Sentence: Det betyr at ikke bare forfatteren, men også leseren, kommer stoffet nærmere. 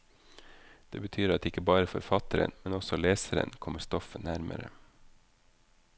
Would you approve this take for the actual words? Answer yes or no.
yes